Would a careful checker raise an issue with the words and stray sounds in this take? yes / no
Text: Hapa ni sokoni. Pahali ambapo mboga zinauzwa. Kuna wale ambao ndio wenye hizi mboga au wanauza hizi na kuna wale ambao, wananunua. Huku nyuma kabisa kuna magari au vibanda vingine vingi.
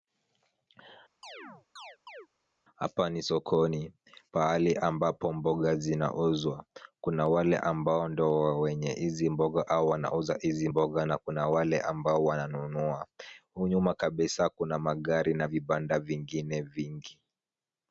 yes